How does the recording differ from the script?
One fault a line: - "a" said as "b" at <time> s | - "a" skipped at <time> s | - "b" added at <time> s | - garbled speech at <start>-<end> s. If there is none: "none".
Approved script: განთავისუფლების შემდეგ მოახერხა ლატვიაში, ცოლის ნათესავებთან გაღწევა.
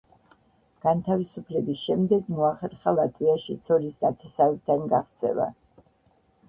none